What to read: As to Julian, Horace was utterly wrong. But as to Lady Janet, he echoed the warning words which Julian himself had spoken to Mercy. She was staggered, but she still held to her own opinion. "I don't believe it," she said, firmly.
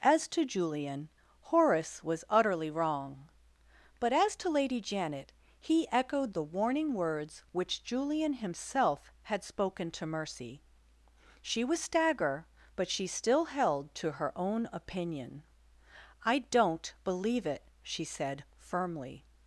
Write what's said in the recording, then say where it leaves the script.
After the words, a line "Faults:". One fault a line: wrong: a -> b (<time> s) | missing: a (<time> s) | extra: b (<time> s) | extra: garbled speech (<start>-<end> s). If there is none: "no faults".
As to Julian, Horace was utterly wrong. But as to Lady Janet, he echoed the warning words which Julian himself had spoken to Mercy. She was stagger, but she still held to her own opinion. "I don't believe it," she said, firmly.
Faults:
wrong: staggered -> stagger (11.8 s)